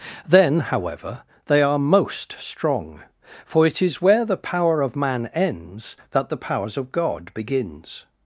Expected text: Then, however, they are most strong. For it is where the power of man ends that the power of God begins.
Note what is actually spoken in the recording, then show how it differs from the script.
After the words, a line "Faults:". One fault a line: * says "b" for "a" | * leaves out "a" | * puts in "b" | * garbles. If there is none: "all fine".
Then, however, they are most strong. For it is where the power of man ends that the powers of God begins.
Faults:
* says "powers" for "power"